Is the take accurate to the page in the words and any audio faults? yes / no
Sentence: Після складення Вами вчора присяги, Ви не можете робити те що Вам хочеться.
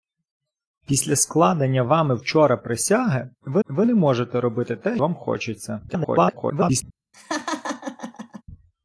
no